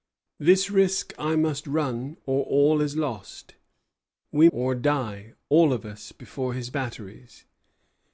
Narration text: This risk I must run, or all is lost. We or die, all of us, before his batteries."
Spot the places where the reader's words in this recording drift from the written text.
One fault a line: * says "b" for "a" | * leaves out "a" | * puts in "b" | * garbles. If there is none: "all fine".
all fine